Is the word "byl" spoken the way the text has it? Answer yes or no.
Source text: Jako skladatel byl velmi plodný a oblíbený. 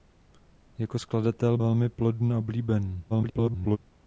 no